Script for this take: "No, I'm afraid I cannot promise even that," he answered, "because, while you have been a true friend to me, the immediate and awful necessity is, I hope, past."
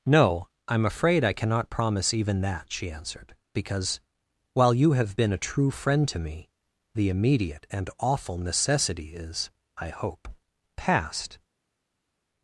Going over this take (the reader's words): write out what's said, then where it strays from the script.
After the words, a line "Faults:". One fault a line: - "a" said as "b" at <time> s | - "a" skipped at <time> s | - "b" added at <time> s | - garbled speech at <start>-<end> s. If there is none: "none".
"No, I'm afraid I cannot promise even that," she answered, "because, while you have been a true friend to me, the immediate and awful necessity is, I hope, past."
Faults:
- "he" said as "she" at 2.7 s